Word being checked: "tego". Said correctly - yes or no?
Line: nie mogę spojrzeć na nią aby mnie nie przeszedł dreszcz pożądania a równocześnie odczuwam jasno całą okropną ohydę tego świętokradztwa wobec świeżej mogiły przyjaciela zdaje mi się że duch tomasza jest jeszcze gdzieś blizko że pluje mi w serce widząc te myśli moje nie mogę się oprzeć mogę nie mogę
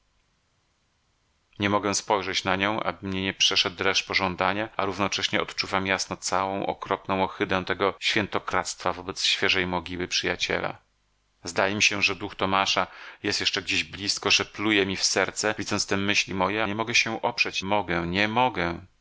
yes